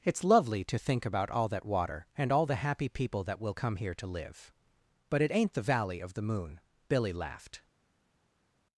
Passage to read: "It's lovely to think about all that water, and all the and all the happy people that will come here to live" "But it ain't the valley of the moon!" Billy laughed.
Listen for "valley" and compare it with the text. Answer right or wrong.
right